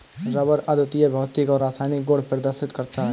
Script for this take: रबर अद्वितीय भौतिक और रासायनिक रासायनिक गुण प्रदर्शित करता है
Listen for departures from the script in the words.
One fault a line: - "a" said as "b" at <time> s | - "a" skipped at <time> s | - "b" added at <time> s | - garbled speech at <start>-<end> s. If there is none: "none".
- "रासायनिक" skipped at 2.0 s